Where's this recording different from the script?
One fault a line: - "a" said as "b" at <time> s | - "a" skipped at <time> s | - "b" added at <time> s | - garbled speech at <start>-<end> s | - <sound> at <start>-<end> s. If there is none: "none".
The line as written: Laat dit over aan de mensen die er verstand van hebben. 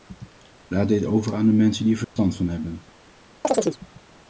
- dropout at 2.0-2.2 s
- chirp at 3.4-3.8 s